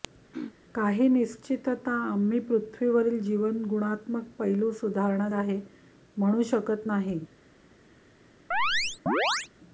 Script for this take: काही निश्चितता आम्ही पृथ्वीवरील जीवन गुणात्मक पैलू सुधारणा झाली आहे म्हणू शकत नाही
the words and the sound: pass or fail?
fail